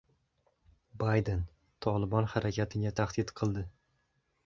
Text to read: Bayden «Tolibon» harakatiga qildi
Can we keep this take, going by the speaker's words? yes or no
no